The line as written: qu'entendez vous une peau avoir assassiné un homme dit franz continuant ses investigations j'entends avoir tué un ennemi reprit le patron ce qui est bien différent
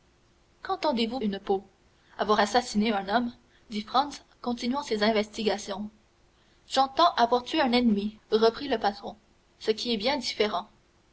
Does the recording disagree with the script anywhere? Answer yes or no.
no